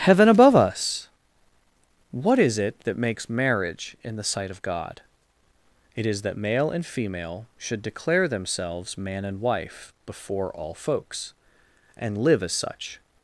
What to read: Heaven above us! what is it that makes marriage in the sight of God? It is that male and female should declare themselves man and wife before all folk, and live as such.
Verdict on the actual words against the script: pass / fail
fail